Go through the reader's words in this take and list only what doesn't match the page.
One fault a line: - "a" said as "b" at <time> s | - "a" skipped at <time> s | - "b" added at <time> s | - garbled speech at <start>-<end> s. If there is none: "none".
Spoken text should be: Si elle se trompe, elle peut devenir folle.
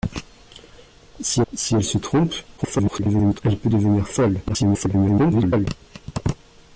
- "si" added at 1.5 s
- garbled speech at 2.6-3.4 s
- garbled speech at 4.5-5.7 s